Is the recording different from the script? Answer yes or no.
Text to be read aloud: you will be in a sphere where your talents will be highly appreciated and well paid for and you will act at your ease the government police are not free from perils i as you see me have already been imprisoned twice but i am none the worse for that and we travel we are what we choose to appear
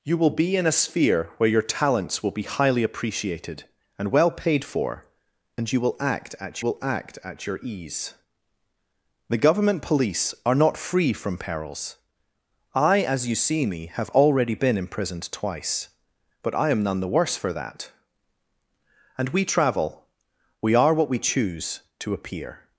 yes